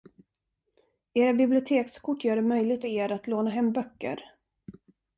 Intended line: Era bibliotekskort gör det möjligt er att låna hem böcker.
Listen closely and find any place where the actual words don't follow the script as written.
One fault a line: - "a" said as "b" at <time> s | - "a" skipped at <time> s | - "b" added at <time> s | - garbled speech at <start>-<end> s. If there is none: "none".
none